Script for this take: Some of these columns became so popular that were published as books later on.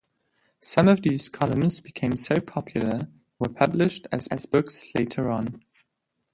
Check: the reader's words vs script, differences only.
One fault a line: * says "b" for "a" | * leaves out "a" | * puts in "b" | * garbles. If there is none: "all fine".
* leaves out "that"
* puts in "as"